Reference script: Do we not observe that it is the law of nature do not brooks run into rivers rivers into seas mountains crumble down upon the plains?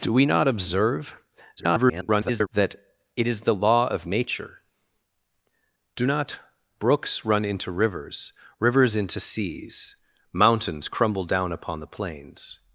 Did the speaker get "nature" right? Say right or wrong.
right